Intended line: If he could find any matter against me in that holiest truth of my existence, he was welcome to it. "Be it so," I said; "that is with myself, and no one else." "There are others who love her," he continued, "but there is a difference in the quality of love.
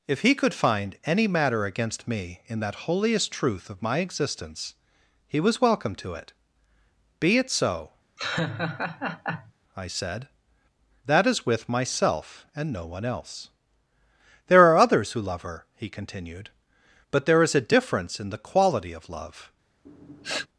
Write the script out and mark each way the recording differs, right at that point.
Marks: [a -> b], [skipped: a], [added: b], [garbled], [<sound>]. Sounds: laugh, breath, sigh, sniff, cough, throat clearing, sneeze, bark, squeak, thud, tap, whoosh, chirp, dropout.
If he could find any matter against me in that holiest truth of my existence, he was welcome to it. "Be it so," [laugh] I said; "that is with myself, and no one else." "There are others who love her," he continued, "but there is a difference in the quality of love. [sniff]